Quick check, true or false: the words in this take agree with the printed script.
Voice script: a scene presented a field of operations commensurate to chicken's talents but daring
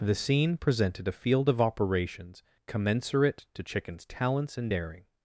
false